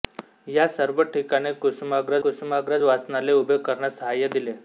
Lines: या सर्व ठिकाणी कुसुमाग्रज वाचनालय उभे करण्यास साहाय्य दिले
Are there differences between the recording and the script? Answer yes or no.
yes